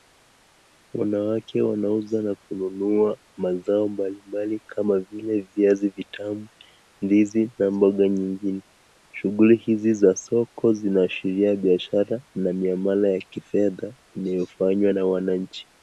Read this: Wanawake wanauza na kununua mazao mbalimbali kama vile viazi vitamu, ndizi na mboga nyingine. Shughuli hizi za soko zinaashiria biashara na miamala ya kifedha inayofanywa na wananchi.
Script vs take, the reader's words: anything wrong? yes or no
no